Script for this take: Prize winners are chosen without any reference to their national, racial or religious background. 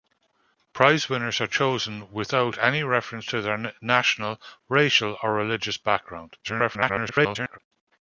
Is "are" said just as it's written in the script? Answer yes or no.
yes